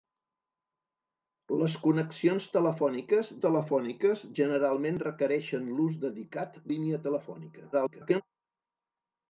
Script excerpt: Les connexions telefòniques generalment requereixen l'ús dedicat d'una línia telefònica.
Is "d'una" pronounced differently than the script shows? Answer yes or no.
yes